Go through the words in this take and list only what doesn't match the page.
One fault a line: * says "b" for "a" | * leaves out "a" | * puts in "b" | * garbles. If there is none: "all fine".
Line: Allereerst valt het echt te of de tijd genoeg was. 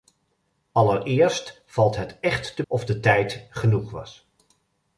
all fine